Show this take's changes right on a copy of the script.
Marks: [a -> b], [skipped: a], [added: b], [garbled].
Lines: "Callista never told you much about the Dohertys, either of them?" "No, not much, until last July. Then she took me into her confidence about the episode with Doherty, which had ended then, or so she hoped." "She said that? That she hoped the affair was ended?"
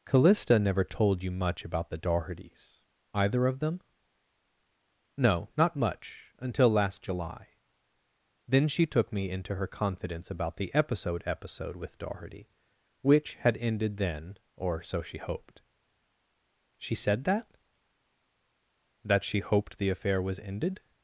"Callista never told you much about the Dohertys, either of them?" "No, not much, until last July. Then she took me into her confidence about the episode [added: episode] with Doherty, which had ended then, or so she hoped." "She said that? That she hoped the affair was ended?"